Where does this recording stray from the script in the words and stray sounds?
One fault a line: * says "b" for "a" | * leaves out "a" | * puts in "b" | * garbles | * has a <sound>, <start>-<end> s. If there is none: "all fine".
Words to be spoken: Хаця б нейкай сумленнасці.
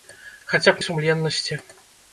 * leaves out "нейкай"